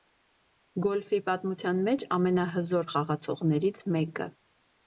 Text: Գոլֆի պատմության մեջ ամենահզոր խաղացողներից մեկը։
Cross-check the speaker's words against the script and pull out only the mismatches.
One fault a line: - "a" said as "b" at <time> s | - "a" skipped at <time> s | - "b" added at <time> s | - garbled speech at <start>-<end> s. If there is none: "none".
none